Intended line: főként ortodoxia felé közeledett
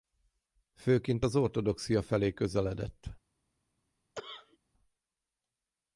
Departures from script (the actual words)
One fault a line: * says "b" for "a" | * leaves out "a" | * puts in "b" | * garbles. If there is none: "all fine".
* puts in "az"